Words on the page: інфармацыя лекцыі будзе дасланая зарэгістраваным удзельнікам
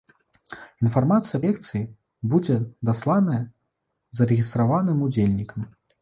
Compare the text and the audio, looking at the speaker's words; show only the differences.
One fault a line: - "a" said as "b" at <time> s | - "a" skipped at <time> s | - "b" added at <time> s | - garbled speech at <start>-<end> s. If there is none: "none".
none